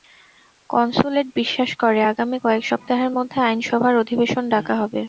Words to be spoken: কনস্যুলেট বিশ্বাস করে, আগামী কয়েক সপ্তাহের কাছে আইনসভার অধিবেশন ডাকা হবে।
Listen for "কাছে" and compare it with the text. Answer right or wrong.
wrong